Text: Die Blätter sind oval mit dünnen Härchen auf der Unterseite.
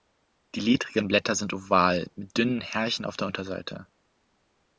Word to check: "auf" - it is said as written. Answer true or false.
true